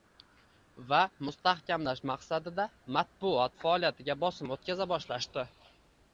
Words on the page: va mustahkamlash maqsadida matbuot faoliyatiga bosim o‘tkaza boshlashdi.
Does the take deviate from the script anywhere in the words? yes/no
no